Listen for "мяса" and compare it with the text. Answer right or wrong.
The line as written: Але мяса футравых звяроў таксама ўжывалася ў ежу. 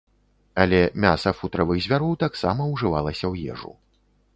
right